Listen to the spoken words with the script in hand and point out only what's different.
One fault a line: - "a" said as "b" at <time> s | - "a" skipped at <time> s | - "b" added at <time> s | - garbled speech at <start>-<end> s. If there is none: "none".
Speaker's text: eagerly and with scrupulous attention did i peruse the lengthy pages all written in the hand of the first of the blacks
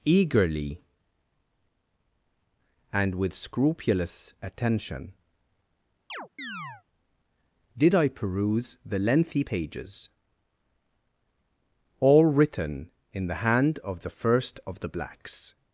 none